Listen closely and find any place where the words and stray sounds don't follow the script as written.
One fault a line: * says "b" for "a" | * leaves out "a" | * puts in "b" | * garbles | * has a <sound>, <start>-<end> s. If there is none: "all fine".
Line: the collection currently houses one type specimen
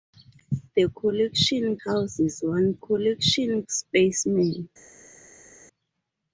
* leaves out "currently"
* says "collection" for "type"